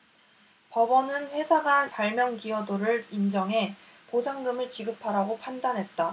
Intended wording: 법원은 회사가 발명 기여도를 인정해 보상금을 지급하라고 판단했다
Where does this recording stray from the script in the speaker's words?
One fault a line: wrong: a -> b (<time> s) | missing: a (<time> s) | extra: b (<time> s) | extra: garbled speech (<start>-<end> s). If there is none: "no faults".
no faults